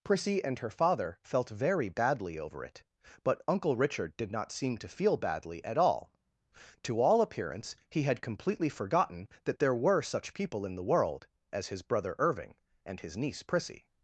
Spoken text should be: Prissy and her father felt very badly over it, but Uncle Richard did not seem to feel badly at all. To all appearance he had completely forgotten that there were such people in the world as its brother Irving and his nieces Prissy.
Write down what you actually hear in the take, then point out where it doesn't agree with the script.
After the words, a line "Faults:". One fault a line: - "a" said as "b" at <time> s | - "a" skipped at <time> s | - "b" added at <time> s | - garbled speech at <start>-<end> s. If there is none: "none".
Prissy and her father felt very badly over it, but Uncle Richard did not seem to feel badly at all. To all appearance he had completely forgotten that there were such people in the world as his brother Irving and his niece Prissy.
Faults:
- "its" said as "his" at 11.7 s
- "nieces" said as "niece" at 13.2 s